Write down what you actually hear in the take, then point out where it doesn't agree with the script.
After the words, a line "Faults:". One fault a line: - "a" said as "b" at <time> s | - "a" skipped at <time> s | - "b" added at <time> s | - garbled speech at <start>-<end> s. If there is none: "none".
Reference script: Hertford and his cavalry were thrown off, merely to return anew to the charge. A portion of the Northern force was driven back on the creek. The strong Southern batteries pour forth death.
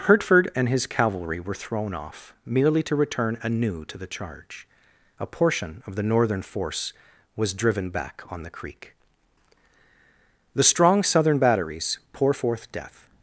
Hertford and his cavalry were thrown off, merely to return anew to the charge. A portion of the Northern force was driven back on the creek. The strong Southern batteries pour forth death.
Faults:
none